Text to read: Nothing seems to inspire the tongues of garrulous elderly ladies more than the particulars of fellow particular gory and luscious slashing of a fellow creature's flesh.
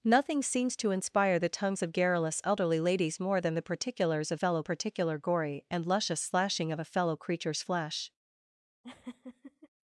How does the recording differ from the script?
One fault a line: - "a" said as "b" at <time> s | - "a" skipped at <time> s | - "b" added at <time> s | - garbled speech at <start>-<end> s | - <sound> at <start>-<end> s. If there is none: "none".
- laugh at 8.8-9.7 s